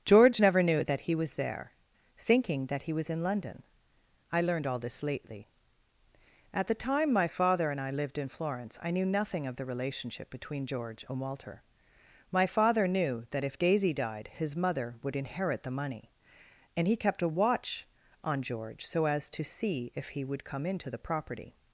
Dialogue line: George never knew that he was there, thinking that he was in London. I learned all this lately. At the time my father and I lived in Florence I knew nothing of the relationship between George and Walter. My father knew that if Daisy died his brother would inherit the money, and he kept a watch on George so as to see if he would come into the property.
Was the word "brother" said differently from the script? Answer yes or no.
yes